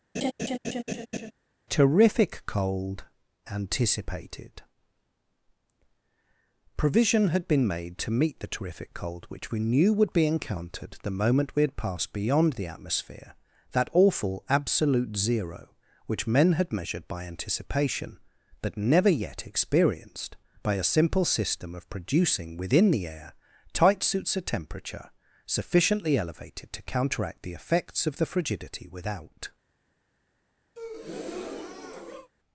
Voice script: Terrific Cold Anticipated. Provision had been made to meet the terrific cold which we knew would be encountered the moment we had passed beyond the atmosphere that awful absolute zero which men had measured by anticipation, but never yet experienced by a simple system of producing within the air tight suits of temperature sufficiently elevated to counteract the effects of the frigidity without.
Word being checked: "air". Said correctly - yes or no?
yes